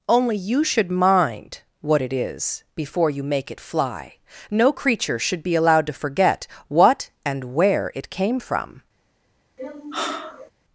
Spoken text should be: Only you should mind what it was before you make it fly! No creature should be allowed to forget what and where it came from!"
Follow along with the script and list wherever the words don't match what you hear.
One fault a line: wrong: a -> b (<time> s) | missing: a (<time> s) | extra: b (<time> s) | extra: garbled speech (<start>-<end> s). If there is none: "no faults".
wrong: was -> is (2.1 s)